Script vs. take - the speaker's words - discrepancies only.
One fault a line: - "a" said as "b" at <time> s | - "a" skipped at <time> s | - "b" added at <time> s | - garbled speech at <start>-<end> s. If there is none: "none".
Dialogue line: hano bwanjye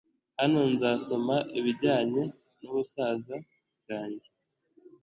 - "nzasoma ibijyanye n'ubusaza" added at 0.7 s